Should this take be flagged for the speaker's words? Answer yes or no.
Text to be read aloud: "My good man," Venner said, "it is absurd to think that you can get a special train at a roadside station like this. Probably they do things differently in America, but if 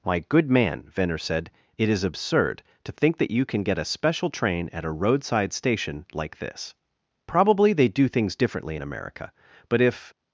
no